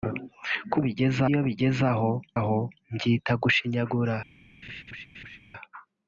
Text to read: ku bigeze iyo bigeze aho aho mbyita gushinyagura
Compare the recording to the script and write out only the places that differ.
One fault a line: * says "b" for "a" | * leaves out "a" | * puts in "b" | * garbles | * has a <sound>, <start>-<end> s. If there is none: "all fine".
* has a laugh, 4.6-5.4 s